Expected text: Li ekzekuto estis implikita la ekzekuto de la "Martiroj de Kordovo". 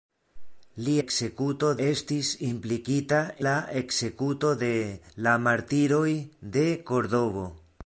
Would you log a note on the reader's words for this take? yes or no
no